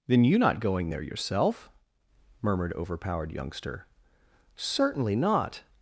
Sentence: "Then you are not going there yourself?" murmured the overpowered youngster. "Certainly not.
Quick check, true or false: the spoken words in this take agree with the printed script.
false